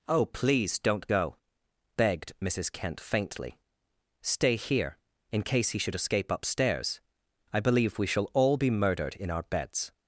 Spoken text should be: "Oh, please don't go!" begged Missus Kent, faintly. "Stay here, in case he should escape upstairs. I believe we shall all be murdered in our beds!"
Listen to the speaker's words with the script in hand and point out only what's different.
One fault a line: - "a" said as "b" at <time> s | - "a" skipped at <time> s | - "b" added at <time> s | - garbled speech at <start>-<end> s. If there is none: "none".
none